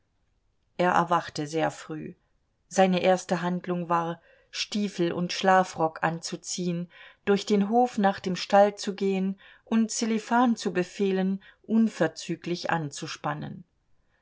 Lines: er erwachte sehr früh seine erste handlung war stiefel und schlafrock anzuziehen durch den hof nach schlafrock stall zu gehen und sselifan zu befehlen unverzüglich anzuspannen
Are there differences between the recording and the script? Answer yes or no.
yes